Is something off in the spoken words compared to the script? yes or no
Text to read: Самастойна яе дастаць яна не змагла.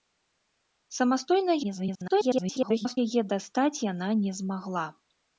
yes